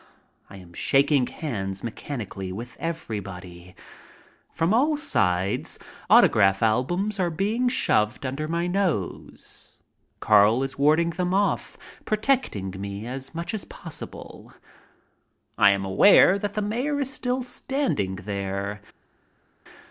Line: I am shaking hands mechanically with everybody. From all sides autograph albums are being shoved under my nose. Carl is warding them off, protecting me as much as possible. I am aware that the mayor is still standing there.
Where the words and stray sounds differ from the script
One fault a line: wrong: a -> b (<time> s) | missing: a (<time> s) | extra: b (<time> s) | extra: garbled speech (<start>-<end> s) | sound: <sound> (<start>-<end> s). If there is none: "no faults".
no faults